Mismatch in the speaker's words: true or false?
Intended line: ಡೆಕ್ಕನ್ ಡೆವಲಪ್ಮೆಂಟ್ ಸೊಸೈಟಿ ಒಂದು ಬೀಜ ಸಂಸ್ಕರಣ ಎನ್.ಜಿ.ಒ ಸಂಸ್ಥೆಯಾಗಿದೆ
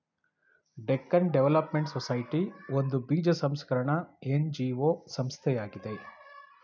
false